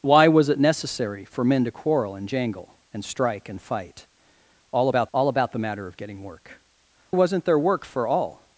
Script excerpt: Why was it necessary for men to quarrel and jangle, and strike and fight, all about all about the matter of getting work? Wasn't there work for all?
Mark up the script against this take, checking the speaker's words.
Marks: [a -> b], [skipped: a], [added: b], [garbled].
Why was it necessary for men to quarrel and jangle, and strike and fight, all about all about the matter of getting work? Wasn't there work for all?